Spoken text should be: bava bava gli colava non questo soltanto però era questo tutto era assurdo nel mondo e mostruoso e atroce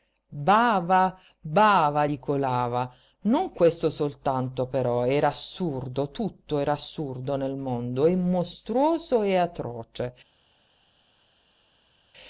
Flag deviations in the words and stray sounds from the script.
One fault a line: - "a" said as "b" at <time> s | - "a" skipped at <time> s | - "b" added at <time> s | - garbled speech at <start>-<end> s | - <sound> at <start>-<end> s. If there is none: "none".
- "questo" said as "assurdo" at 5.3 s